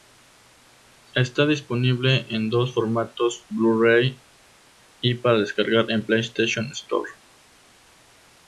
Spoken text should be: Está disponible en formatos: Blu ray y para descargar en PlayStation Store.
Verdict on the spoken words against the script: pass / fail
fail